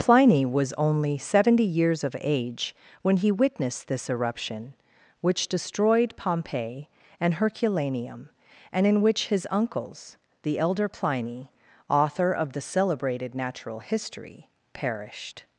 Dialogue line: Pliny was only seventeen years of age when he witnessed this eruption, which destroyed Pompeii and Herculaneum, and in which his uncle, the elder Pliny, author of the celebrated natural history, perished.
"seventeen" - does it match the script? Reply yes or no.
no